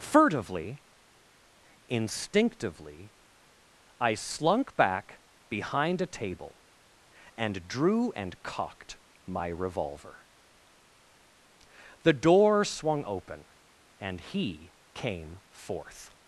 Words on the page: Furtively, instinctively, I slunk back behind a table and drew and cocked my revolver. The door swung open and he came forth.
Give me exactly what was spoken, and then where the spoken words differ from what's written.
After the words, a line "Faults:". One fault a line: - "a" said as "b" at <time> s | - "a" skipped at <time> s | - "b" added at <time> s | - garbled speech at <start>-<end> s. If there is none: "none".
Furtively, instinctively, I slunk back behind a table and drew and cocked my revolver. The door swung open and he came forth.
Faults:
none